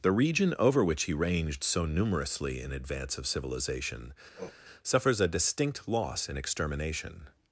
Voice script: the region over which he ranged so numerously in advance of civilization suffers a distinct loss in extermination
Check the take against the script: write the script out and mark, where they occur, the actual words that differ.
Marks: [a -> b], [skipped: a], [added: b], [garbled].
the region over which he ranged so numerously in advance of civilization suffers a distinct loss in extermination